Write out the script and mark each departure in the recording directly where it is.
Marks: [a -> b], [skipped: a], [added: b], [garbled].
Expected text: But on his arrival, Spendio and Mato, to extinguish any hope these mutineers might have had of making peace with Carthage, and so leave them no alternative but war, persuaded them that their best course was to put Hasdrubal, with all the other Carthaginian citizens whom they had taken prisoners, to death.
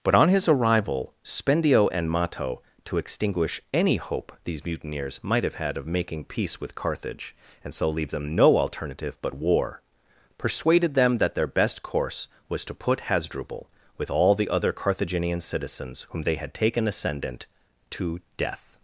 But on his arrival, Spendio and Mato, to extinguish any hope these mutineers might have had of making peace with Carthage, and so leave them no alternative but war, persuaded them that their best course was to put Hasdrubal, with all the other Carthaginian citizens whom they had taken [prisoners, -> ascendant] to death.